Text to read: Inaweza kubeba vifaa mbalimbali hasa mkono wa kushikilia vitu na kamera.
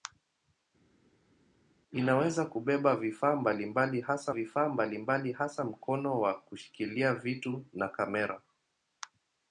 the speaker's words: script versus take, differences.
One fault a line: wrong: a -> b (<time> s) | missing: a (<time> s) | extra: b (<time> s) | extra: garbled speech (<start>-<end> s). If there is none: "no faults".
extra: vifaa mbalimbali hasa (4.3 s)